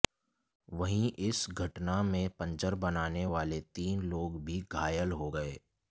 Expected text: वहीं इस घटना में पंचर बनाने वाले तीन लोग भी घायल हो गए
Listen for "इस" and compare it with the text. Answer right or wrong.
right